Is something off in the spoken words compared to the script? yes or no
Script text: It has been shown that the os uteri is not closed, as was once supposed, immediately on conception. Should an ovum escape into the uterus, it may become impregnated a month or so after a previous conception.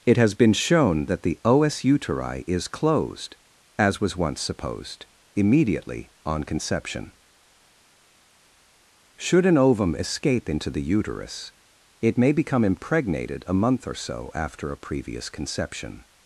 yes